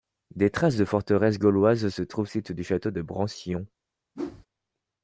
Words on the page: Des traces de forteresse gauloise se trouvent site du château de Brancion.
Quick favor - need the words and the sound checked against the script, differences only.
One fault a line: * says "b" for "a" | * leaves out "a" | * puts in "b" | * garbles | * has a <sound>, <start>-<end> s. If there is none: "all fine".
* has a whoosh, 4.1-4.5 s